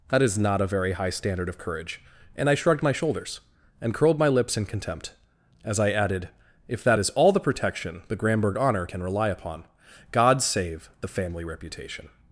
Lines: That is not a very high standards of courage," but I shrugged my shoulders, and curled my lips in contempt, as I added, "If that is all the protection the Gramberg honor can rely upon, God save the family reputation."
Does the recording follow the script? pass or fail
fail